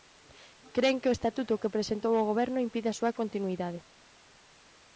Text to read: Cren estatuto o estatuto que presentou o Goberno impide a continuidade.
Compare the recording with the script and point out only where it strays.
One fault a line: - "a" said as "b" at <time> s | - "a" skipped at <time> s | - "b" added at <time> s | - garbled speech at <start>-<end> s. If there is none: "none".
- "estatuto" said as "que" at 1.0 s
- "súa" added at 3.0 s